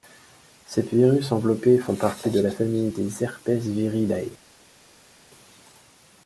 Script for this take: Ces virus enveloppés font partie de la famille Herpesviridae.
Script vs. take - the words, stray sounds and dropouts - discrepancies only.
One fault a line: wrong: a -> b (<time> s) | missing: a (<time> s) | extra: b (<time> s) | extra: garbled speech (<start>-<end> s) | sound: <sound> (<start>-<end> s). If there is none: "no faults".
extra: des (2.9 s)